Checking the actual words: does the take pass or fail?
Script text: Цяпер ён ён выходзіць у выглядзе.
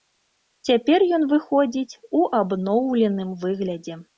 fail